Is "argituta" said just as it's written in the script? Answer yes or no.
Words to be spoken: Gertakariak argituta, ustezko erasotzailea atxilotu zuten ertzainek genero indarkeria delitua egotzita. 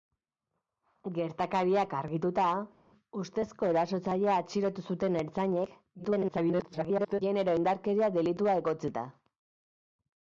yes